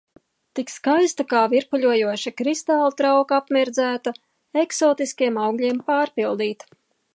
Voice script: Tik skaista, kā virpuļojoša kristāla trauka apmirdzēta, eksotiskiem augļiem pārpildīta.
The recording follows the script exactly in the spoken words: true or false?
true